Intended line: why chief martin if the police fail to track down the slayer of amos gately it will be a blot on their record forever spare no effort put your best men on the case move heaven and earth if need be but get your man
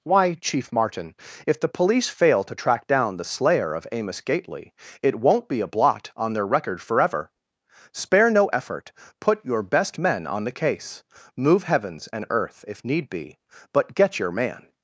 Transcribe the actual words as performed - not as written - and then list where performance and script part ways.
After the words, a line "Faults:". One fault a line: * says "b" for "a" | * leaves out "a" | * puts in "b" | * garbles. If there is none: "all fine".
why chief martin if the police fail to track down the slayer of amos gately it won't be a blot on their record forever spare no effort put your best men on the case move heavens and earth if need be but get your man
Faults:
* says "won't" for "will"
* says "heavens" for "heaven"